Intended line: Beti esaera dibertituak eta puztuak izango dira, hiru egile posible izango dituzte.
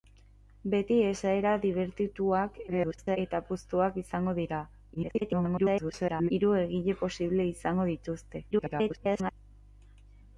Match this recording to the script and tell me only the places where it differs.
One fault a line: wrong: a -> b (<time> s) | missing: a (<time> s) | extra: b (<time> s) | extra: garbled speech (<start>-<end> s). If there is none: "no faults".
extra: garbled speech (2.7-3.2 s)
extra: garbled speech (4.9-6.3 s)
extra: garbled speech (8.5-9.3 s)